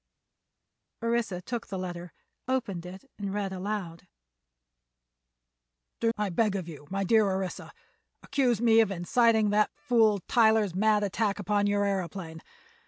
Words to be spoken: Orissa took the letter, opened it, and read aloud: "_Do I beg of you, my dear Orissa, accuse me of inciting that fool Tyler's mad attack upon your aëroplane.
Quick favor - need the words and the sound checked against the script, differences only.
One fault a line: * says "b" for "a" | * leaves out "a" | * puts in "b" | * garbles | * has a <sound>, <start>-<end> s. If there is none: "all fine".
all fine